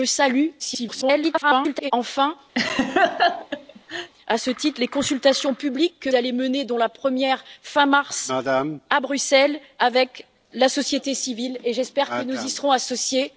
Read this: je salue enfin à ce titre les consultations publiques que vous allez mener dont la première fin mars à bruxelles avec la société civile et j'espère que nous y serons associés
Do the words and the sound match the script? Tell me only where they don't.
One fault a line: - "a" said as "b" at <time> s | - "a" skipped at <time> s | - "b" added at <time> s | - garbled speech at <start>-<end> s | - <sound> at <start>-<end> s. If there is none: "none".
- garbled speech at 0.6-1.9 s
- laugh at 2.6-4.1 s
- "vous" skipped at 6.1 s